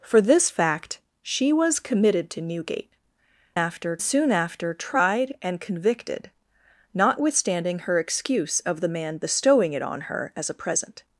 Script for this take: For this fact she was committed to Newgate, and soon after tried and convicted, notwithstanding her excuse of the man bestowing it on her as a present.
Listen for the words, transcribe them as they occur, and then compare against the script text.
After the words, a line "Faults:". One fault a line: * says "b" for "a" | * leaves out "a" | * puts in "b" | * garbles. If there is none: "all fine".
For this fact she was committed to Newgate, after soon after tried and convicted, notwithstanding her excuse of the man bestowing it on her as a present.
Faults:
* says "after" for "and"